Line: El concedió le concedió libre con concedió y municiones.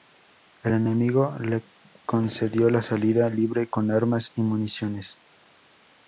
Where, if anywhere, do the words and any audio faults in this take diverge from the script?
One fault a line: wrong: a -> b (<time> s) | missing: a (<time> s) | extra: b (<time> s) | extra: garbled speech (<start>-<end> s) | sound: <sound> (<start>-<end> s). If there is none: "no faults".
wrong: concedió -> enemigo (0.7 s)
extra: la salida (2.7 s)
wrong: concedió -> armas (3.9 s)